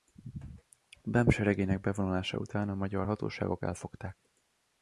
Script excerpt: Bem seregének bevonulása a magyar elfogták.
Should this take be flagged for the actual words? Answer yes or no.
yes